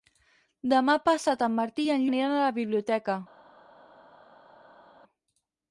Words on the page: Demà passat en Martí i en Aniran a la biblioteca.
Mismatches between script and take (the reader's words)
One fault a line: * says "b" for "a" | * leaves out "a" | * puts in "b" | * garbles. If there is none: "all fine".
all fine